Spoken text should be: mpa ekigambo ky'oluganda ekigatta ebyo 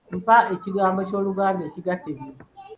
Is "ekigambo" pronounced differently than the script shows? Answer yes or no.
no